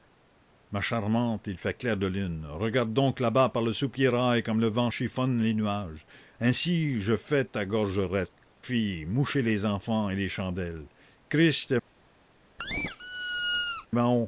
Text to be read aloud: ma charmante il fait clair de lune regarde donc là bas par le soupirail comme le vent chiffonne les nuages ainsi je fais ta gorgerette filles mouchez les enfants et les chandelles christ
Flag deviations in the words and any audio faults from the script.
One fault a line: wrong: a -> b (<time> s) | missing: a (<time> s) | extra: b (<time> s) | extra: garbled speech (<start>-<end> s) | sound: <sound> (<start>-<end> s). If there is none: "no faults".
sound: squeak (12.6-13.9 s)